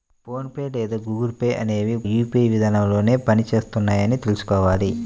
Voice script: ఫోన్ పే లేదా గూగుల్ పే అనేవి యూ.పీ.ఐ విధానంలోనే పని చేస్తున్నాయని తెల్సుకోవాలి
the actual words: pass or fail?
pass